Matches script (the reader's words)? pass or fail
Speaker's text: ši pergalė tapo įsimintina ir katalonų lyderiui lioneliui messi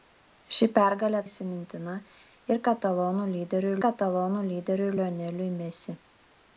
fail